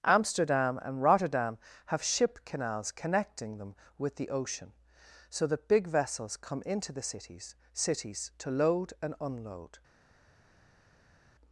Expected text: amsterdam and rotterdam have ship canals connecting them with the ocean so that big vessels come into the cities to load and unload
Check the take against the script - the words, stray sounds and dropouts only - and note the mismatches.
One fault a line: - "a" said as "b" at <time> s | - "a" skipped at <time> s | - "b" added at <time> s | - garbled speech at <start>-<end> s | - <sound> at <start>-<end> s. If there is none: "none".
- "cities" added at 7.7 s